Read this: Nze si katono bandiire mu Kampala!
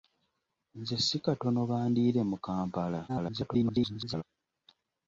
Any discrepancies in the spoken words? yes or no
yes